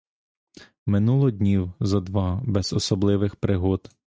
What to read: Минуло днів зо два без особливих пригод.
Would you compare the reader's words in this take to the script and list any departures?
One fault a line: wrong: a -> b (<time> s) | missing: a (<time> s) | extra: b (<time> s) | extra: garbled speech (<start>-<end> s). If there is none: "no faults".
no faults